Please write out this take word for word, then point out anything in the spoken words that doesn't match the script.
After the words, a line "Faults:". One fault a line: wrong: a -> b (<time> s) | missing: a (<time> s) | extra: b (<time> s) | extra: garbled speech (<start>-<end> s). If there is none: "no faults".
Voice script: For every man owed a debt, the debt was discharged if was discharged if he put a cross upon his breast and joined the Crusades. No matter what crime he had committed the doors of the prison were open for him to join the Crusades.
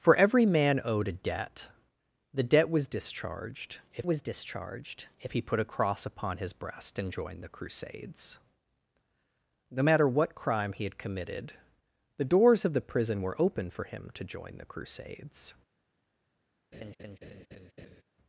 For every man owed a debt, the debt was discharged if was discharged if he put a cross upon his breast and joined the Crusades. No matter what crime he had committed the doors of the prison were open for him to join the Crusades.
Faults:
no faults